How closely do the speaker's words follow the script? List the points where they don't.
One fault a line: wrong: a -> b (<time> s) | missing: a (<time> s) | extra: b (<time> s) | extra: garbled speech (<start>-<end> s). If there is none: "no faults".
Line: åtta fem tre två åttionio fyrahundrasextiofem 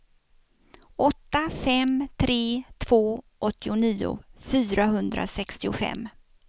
no faults